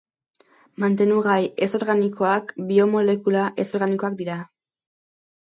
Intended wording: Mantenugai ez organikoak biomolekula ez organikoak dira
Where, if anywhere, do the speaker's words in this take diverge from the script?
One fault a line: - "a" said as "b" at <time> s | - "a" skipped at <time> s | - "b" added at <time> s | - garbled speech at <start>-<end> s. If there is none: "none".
none